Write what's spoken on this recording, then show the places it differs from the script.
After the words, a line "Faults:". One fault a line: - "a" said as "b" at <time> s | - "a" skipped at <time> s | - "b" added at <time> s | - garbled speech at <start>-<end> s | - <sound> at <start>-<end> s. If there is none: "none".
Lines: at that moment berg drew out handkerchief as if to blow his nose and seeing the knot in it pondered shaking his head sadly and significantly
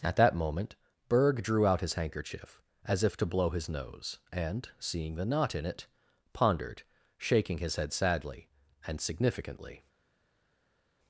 at that moment berg drew out his handkerchief as if to blow his nose and seeing the knot in it pondered shaking his head sadly and significantly
Faults:
- "his" added at 1.8 s